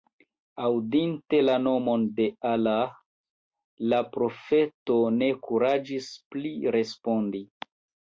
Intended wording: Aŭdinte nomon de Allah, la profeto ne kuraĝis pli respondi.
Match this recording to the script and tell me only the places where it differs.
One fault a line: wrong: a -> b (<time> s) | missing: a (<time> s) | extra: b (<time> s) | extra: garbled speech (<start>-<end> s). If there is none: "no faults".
extra: la (1.4 s)